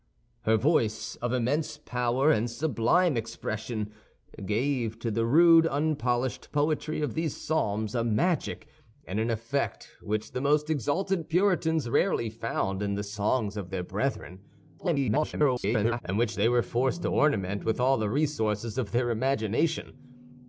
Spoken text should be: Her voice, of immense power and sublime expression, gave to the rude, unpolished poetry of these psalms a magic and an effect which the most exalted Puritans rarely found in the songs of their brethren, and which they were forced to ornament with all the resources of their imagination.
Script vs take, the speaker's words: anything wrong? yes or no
yes